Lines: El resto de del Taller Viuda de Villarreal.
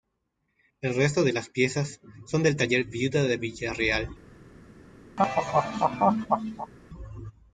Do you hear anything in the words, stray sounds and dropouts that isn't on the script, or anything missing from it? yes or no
yes